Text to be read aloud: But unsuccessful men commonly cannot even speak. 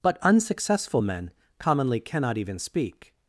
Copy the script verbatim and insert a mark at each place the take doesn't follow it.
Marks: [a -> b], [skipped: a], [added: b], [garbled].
But unsuccessful men commonly cannot even speak.